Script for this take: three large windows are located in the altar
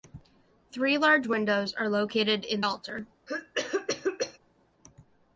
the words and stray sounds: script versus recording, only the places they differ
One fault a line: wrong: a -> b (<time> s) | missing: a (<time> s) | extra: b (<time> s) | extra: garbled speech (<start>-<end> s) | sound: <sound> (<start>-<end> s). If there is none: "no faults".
missing: the (2.6 s)
sound: cough (3.3-4.4 s)